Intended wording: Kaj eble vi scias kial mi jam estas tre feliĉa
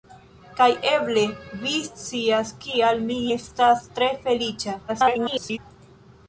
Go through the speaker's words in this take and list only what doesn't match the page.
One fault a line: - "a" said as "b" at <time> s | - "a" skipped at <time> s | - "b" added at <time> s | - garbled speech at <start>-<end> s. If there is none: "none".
- "jam" skipped at 3.2 s
- garbled speech at 4.9-5.6 s